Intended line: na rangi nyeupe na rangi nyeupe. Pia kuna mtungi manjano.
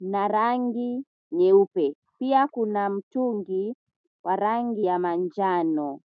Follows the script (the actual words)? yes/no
no